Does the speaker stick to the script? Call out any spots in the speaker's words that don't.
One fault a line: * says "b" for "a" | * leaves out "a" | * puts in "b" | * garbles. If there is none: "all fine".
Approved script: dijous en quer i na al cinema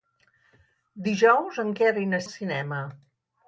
all fine